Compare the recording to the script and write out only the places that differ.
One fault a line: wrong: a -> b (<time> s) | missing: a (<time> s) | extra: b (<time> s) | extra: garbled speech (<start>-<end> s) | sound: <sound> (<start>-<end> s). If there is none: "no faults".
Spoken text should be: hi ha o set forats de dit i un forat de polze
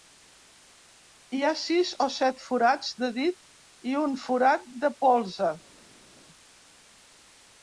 extra: sis (1.6 s)